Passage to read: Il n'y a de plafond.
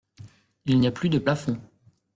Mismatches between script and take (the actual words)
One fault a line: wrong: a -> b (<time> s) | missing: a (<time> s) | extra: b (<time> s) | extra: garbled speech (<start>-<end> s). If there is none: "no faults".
extra: plus (0.9 s)